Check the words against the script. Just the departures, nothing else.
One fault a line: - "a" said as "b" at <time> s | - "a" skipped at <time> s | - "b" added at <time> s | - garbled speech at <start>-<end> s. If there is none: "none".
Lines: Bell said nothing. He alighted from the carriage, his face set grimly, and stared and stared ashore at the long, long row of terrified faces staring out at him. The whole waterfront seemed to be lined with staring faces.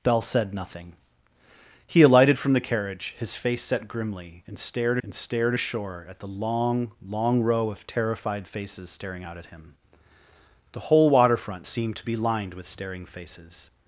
none